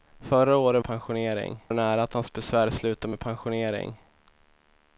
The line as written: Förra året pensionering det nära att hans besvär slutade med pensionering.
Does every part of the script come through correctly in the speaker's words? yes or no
yes